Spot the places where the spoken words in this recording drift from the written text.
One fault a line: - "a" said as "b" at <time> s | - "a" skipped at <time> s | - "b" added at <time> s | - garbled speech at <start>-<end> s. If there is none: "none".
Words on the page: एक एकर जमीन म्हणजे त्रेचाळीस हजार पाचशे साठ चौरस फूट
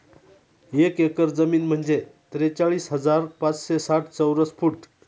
none